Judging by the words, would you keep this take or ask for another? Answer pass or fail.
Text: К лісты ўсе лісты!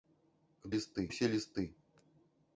pass